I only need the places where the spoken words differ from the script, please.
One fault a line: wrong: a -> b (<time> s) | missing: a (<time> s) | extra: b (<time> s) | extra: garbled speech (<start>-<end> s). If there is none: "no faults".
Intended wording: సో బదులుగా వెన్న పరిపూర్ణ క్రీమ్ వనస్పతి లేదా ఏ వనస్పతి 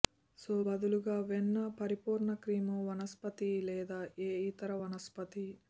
extra: ఇతర (4.5 s)